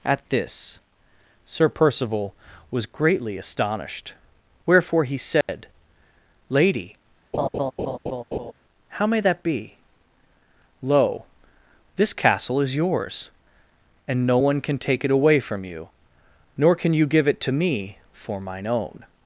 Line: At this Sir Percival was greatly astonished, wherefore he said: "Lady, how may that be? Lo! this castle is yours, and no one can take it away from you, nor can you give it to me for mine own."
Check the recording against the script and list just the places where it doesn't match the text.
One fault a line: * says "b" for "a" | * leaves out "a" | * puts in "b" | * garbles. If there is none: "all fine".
all fine